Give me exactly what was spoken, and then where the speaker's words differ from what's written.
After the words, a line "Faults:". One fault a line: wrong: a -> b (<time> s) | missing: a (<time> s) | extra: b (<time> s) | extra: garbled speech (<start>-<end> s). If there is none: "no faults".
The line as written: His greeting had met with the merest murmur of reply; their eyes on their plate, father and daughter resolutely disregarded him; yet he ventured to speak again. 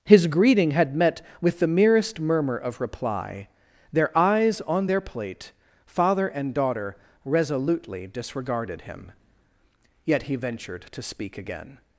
His greeting had met with the merest murmur of reply; their eyes on their plate, father and daughter resolutely disregarded him; yet he ventured to speak again.
Faults:
no faults